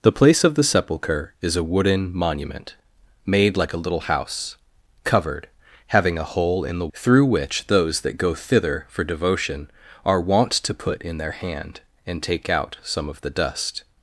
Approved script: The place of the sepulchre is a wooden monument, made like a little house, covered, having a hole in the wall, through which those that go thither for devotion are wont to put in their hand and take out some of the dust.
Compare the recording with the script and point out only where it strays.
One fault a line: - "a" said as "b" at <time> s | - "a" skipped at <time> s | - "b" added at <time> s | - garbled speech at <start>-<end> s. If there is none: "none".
- "wall" skipped at 6.9 s